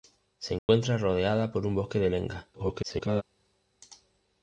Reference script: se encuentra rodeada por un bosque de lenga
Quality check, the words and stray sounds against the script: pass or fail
fail